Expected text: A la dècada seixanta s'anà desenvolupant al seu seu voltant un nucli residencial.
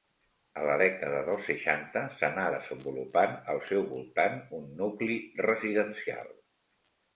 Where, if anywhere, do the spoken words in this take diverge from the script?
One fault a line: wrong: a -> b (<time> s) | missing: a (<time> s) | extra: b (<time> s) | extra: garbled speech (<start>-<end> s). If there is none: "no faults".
extra: dels (1.3 s)
missing: seu (3.9 s)